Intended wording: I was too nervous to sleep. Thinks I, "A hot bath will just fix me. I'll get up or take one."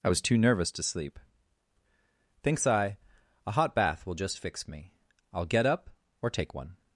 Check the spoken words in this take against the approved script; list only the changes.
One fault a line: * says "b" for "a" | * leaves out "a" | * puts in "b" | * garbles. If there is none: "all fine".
all fine